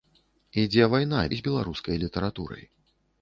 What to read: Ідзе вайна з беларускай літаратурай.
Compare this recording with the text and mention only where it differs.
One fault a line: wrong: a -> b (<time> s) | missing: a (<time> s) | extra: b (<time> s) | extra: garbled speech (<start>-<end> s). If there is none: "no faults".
no faults